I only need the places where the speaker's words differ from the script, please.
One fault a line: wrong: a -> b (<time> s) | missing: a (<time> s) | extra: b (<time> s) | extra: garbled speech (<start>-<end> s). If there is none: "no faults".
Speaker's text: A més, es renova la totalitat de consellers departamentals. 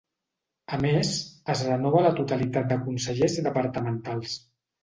no faults